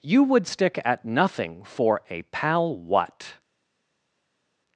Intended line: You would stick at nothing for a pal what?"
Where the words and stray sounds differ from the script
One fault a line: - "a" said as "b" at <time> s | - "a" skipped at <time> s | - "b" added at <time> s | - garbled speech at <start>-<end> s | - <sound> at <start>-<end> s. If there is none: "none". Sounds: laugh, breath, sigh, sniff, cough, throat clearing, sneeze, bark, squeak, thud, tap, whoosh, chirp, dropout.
none